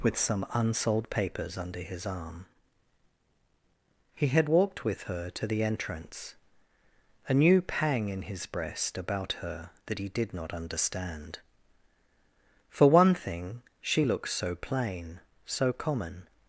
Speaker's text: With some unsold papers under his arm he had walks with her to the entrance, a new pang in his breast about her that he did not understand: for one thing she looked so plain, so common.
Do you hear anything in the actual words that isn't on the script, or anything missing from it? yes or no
yes